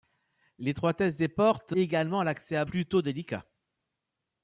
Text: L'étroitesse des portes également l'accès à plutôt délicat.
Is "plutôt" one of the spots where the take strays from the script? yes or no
no